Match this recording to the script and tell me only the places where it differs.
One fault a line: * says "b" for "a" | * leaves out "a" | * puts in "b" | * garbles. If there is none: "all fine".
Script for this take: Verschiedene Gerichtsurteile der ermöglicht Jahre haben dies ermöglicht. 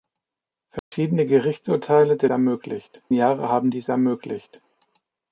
all fine